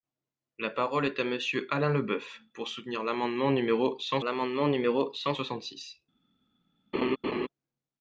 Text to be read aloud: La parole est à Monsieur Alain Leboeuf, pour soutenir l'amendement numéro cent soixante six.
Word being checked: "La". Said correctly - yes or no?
yes